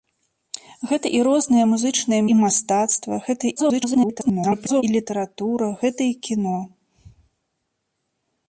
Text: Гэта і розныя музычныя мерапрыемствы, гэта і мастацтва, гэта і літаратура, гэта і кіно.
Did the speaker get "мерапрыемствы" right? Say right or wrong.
wrong